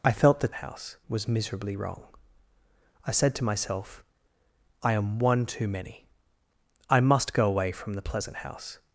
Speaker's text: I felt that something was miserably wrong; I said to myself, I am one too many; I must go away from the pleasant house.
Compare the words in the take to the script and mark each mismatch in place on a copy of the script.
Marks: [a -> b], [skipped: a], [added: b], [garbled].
I felt that [something -> house] was miserably wrong; I said to myself, I am one too many; I must go away from the pleasant house.